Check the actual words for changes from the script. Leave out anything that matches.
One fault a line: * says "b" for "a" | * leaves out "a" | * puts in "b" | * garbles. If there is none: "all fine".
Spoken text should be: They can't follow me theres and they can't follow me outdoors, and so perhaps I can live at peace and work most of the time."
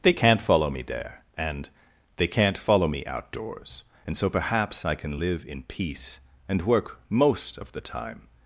* says "there" for "theres"
* says "in" for "at"